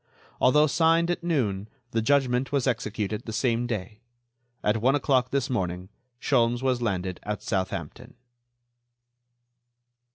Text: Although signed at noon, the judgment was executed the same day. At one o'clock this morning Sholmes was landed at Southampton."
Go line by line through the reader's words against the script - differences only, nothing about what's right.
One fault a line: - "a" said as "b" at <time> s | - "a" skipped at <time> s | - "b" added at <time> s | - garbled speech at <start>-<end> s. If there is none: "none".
none